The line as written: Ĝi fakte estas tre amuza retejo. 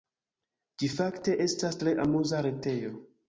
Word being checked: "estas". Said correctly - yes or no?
yes